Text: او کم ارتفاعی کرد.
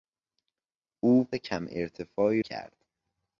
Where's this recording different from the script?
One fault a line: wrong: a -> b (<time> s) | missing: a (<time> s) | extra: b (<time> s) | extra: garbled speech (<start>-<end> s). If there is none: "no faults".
no faults